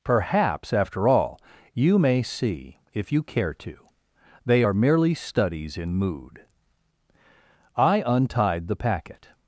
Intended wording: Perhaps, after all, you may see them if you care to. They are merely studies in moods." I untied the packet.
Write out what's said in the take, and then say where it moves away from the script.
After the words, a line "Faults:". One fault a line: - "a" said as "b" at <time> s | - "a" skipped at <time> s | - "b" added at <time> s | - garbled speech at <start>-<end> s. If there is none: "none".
Perhaps, after all, you may see if you care to. They are merely studies in mood." I untied the packet.
Faults:
- "them" skipped at 2.8 s
- "moods" said as "mood" at 5.9 s